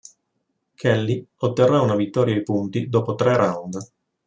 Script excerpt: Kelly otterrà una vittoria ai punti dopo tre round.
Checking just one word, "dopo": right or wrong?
right